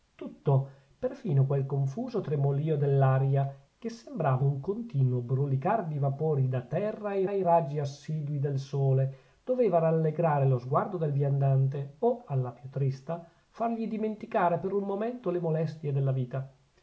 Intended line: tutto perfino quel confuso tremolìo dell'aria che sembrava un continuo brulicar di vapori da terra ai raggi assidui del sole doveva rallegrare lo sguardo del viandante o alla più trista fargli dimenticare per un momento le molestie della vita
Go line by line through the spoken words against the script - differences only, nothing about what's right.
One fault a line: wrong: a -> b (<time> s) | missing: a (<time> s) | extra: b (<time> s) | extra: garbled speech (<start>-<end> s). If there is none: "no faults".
extra: ai (7.3 s)